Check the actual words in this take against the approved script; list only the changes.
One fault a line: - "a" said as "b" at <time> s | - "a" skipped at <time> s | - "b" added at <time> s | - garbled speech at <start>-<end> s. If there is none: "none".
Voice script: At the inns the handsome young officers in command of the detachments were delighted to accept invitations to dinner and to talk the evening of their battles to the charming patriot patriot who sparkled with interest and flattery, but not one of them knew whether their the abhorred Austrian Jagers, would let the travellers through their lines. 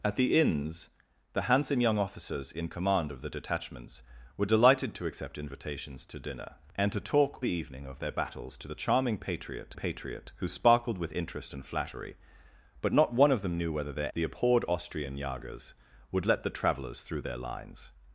none